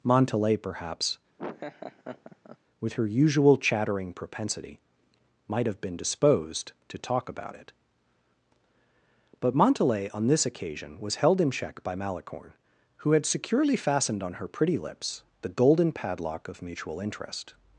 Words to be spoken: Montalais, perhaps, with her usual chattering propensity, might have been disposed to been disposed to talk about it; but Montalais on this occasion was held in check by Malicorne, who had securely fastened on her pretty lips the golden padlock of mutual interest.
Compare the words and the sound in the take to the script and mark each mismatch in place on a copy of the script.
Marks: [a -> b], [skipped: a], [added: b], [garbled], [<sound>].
Montalais, perhaps, [laugh] with her usual chattering propensity, might have been disposed to [skipped: been disposed to] talk about it; but Montalais on this occasion was held in check by Malicorne, who had securely fastened on her pretty lips the golden padlock of mutual interest.